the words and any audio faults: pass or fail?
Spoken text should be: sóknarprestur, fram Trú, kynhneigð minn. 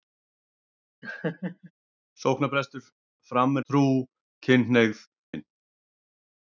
fail